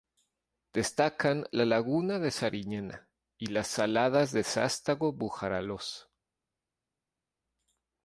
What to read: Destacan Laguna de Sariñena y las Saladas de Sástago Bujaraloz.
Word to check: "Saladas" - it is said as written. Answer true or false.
true